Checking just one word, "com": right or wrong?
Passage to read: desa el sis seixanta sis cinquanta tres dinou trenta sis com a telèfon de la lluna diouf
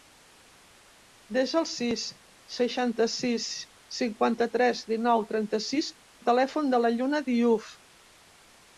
wrong